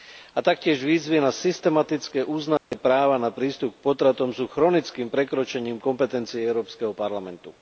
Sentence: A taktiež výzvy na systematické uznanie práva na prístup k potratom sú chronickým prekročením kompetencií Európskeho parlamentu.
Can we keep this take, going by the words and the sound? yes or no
no